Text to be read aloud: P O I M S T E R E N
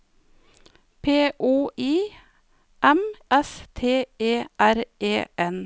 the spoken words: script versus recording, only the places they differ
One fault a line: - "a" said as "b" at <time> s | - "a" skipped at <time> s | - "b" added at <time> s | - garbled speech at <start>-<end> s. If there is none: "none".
none